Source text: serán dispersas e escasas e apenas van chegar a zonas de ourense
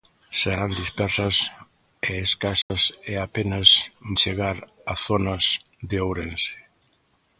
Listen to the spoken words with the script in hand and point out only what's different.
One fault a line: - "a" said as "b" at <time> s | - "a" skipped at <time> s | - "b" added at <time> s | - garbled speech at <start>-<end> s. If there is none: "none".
- "van" skipped at 3.7 s